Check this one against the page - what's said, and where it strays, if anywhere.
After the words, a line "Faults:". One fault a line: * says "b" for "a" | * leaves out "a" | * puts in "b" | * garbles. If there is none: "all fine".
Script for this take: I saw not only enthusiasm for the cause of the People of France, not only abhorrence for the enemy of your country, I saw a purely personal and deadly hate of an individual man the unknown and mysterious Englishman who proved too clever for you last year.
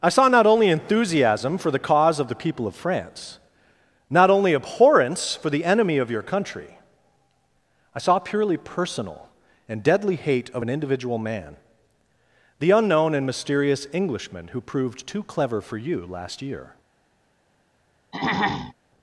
I saw not only enthusiasm for the cause of the People of France, not only abhorrence for the enemy of your country, I saw purely personal and deadly hate of an individual man the unknown and mysterious Englishman who proved too clever for you last year.
Faults:
* leaves out "a"